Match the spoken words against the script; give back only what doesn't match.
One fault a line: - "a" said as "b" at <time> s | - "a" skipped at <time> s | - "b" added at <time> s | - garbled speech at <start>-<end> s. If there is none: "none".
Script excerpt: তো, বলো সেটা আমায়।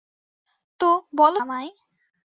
- "সেটা" skipped at 1.4 s